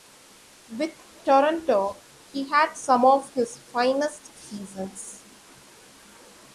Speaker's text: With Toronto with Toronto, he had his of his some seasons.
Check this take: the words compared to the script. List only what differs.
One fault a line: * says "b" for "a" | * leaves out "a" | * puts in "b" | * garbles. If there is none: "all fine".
* leaves out "with Toronto"
* says "some" for "his"
* says "finest" for "some"